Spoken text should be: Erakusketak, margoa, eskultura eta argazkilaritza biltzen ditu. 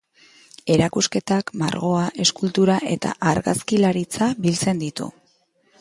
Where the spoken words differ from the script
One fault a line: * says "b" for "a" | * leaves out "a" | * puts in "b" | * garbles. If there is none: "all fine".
all fine